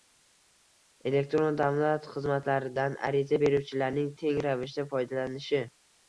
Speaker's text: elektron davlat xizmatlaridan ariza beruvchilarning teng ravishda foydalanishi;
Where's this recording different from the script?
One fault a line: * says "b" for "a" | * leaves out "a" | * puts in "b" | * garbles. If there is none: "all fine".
all fine